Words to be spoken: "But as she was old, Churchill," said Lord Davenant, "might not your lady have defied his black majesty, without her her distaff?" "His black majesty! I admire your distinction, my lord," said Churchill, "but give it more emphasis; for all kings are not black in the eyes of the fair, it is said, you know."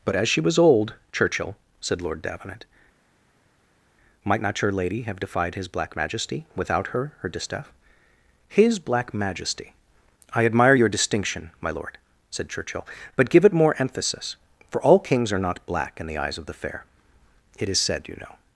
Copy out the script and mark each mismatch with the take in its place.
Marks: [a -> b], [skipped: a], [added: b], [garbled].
"But as she was old, Churchill," said Lord Davenant, "might not your lady have defied his black majesty, without her her distaff?" "His black majesty! I admire your distinction, my lord," said Churchill, "but give it more emphasis; for all kings are not black in the eyes of the fair, it is said, you know."